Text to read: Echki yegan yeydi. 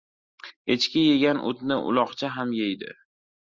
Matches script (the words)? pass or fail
fail